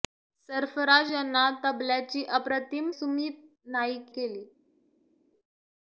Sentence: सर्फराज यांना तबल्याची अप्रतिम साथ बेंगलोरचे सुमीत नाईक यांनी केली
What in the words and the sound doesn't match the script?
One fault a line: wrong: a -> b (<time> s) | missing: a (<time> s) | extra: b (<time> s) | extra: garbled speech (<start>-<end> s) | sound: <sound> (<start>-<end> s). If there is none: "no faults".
missing: साथ बेंगलोरचे (2.9 s)
missing: यांनी (4.1 s)